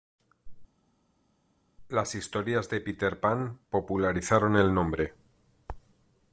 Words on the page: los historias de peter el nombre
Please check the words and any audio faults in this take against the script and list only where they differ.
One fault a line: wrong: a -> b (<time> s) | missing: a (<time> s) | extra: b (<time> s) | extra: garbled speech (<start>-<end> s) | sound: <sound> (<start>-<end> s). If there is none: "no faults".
wrong: los -> las (1.9 s)
extra: pan popularizaron (3.2 s)